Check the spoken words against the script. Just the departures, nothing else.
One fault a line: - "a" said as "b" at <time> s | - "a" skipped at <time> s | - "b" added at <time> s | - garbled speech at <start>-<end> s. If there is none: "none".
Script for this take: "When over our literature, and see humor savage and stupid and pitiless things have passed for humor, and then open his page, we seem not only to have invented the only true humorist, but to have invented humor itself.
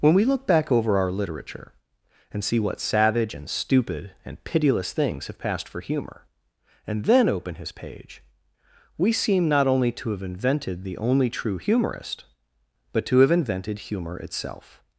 - "we look back" added at 0.1 s
- "humor" said as "what" at 2.6 s